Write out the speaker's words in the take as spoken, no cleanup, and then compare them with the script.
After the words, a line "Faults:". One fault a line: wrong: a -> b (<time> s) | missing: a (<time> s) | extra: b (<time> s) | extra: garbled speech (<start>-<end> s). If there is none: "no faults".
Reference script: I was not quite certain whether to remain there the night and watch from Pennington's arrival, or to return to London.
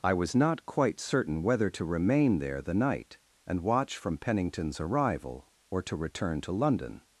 I was not quite certain whether to remain there the night and watch from Pennington's arrival, or to return to London.
Faults:
no faults